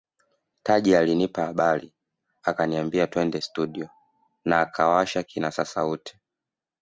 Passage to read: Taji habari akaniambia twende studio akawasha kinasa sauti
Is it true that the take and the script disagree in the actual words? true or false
true